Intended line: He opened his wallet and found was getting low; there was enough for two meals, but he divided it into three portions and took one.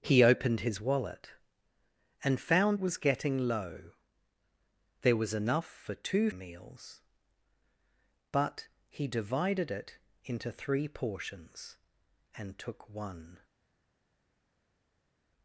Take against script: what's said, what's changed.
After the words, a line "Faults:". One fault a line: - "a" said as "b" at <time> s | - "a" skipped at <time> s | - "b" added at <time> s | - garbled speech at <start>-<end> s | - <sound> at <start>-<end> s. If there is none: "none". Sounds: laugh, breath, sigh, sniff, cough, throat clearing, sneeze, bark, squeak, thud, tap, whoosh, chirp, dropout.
He opened his wallet and found was getting low; there was enough for two meals, but he divided it into three portions and took one.
Faults:
none